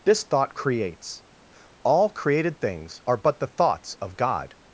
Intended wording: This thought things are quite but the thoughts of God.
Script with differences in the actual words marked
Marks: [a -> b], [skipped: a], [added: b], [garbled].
This thought [added: creates All created] things are [skipped: quite] but the thoughts of God.